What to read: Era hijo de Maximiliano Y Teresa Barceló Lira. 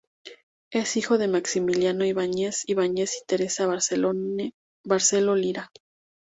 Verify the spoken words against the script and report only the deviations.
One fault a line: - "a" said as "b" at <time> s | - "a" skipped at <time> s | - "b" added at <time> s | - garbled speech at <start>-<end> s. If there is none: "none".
- "Era" said as "Es" at 0.7 s
- "Ibáñez Ibáñez" added at 2.0 s